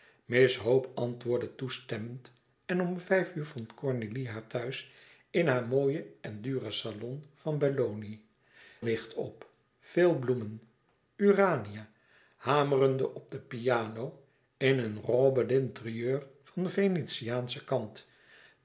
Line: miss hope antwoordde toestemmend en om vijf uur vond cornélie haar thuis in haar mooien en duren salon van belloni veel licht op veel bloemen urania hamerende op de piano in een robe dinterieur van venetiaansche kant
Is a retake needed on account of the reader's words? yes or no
yes